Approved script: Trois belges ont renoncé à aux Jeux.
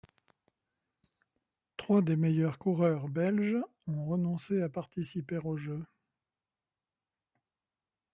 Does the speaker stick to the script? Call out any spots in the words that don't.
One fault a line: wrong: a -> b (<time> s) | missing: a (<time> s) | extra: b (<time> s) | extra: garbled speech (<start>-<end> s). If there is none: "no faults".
extra: des meilleurs coureurs (2.0 s)
extra: participer (4.7 s)